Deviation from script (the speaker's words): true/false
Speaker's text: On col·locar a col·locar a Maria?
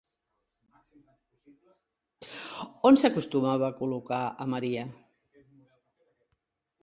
true